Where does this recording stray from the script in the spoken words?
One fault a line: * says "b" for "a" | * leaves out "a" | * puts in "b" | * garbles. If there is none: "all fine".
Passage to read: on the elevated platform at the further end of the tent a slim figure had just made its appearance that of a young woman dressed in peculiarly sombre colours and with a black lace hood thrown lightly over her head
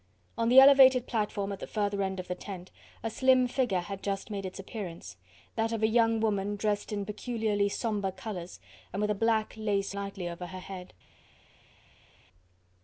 * leaves out "hood thrown"